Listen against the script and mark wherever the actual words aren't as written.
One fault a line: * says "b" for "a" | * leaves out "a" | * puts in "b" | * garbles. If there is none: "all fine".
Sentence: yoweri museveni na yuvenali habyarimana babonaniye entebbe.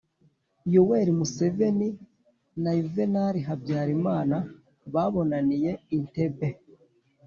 all fine